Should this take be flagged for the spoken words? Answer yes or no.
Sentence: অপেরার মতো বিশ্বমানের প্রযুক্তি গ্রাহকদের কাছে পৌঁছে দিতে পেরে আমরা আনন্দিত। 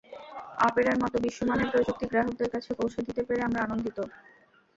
no